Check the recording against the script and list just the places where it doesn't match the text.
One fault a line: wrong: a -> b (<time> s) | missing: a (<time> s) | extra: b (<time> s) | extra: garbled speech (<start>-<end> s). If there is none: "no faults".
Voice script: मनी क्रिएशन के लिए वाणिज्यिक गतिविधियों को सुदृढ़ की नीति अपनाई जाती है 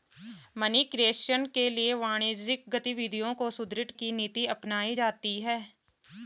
no faults